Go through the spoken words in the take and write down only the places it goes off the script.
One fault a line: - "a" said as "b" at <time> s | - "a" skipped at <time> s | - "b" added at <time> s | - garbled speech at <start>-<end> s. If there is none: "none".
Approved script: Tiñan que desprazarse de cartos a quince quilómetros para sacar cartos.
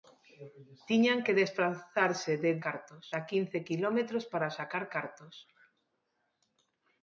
none